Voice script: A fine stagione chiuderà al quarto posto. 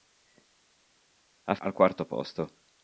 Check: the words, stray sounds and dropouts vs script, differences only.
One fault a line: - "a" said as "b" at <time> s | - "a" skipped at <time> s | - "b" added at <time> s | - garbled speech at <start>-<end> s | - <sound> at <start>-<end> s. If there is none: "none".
- "fine stagione chiuderà" skipped at 1.6 s